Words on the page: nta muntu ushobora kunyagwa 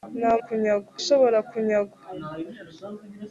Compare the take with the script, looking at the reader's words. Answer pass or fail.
fail